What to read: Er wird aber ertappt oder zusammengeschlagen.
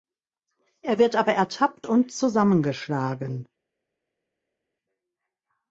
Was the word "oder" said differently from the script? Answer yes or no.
yes